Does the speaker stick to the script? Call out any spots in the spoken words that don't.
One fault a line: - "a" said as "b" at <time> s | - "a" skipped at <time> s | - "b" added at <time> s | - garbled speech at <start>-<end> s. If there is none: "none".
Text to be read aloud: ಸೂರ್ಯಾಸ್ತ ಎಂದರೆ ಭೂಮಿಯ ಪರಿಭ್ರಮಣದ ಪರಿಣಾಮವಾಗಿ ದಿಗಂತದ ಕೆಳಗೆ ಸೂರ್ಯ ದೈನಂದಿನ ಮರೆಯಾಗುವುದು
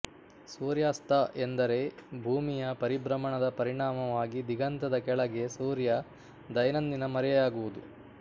none